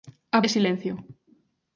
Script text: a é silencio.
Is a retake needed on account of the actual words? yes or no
no